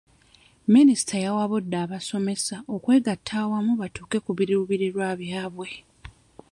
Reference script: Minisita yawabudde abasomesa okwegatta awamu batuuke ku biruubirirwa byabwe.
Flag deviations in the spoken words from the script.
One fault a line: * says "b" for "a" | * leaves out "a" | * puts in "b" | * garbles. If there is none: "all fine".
all fine